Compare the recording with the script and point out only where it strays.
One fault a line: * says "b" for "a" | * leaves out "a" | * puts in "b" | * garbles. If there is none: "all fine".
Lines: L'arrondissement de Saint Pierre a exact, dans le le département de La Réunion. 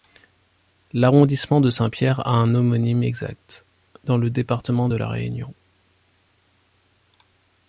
* puts in "un homonyme"
* leaves out "le"